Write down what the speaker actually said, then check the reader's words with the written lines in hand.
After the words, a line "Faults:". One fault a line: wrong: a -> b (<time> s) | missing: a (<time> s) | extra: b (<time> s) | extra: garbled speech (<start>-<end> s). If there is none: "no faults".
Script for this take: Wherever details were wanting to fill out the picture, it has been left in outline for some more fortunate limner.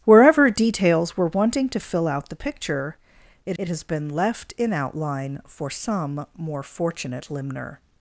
Wherever details were wanting to fill out the picture, it it has been left in outline for some more fortunate limner.
Faults:
extra: it (3.6 s)